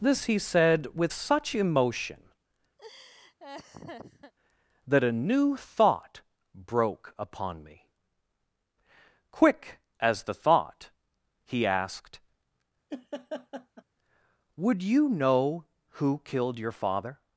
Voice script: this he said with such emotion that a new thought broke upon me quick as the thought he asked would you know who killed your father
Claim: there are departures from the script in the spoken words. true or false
false